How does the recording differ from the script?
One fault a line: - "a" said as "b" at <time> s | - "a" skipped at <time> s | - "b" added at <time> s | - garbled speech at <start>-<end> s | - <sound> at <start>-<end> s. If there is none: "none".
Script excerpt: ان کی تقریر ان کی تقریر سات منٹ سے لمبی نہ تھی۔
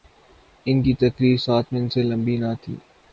- "ان کی تقریر" skipped at 1.4 s